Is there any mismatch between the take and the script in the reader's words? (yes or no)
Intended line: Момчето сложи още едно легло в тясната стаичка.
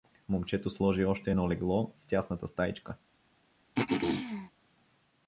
no